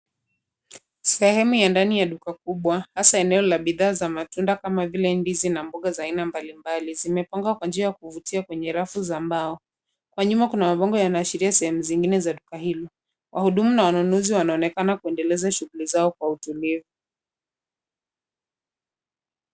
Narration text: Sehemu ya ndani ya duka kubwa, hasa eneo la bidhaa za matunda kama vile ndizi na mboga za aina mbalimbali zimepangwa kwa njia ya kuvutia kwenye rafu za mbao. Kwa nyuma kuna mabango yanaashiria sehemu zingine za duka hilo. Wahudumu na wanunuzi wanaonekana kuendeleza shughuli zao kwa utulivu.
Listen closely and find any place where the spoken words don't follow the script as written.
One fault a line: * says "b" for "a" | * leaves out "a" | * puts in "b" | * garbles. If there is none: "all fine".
all fine